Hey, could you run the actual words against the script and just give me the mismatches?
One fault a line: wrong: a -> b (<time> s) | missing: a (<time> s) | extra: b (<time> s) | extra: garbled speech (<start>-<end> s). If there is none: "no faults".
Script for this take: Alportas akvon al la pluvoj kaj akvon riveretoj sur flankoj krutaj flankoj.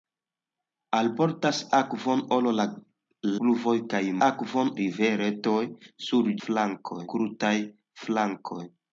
no faults